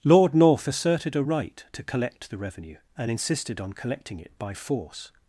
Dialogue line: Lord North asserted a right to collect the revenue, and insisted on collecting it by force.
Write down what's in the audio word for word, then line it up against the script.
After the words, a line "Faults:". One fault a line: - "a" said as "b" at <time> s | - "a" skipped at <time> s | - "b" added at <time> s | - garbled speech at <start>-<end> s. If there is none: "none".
Lord North asserted a right to collect the revenue, and insisted on collecting it by force.
Faults:
none